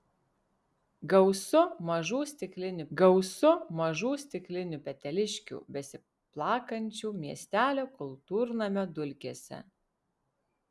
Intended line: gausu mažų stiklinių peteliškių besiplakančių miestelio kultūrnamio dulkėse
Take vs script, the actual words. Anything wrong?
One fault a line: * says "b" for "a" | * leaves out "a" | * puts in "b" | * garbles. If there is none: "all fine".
* puts in "gausu mažų stiklinių"